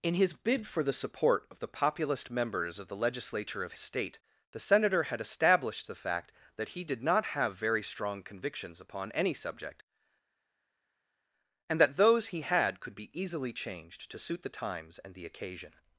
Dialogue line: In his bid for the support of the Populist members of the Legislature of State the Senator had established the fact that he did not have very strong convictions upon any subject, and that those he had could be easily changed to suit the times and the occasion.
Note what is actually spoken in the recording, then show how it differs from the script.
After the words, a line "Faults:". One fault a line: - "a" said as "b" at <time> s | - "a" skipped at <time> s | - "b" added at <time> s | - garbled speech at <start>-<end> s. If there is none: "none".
In his bid for the support of the Populist members of the Legislature of State the Senator had established the fact that he did not have very strong convictions upon any subject, and that those he had could be easily changed to suit the times and the occasion.
Faults:
none